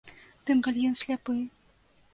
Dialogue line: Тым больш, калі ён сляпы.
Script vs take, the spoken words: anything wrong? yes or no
yes